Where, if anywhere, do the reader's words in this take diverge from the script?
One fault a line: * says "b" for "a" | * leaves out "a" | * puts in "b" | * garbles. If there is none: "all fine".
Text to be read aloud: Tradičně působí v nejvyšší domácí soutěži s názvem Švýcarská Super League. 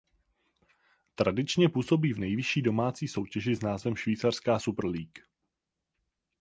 all fine